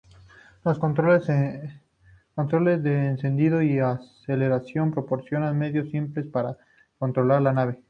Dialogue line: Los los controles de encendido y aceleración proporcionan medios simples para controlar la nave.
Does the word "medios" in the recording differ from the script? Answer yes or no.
no